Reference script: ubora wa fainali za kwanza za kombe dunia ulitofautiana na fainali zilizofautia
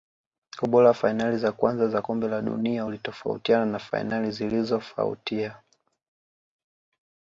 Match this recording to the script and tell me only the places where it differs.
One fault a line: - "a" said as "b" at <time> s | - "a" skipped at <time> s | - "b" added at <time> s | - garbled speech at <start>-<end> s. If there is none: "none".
- "la" added at 2.3 s